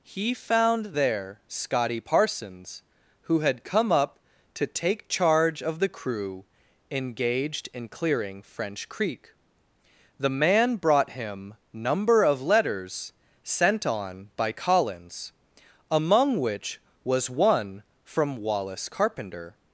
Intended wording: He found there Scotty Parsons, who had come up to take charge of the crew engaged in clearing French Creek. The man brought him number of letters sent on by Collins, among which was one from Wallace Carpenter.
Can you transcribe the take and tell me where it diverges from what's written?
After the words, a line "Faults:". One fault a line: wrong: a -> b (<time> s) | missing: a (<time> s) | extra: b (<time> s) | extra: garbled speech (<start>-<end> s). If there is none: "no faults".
He found there Scotty Parsons, who had come up to take charge of the crew engaged in clearing French Creek. The man brought him number of letters sent on by Collins, among which was one from Wallace Carpenter.
Faults:
no faults